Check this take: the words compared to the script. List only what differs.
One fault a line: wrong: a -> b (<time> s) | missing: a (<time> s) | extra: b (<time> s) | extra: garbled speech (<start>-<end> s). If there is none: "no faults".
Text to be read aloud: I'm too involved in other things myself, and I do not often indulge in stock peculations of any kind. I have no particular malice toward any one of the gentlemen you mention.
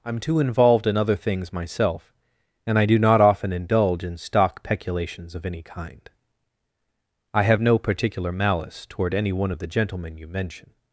no faults